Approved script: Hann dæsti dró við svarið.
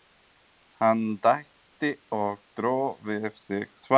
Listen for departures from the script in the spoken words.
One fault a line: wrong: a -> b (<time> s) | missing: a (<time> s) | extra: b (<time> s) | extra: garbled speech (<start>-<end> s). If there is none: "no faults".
extra: og (2.2 s)
extra: sig (3.5 s)